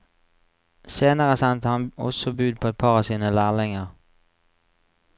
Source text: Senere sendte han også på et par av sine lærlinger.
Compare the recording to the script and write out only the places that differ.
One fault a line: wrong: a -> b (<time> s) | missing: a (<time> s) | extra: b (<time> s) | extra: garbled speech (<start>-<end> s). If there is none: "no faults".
extra: bud (2.3 s)